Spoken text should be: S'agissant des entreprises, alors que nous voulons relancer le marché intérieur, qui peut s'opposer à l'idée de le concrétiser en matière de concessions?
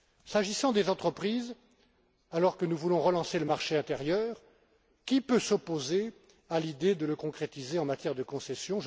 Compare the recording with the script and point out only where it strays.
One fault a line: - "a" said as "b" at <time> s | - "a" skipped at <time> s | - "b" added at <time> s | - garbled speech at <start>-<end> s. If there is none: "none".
none